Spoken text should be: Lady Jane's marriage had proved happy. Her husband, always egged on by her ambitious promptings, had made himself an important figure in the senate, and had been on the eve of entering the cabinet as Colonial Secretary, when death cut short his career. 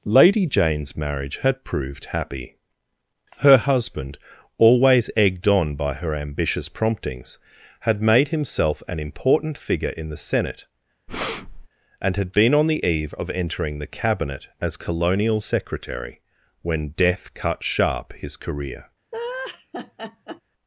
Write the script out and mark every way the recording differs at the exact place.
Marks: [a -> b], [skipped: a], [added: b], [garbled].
Lady Jane's marriage had proved happy. Her husband, always egged on by her ambitious promptings, had made himself an important figure in the senate, and had been on the eve of entering the cabinet as Colonial Secretary, when death cut [short -> sharp] his career.